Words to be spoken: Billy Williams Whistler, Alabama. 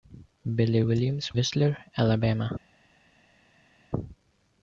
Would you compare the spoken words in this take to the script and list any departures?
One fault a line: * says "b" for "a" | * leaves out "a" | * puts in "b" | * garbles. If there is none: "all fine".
all fine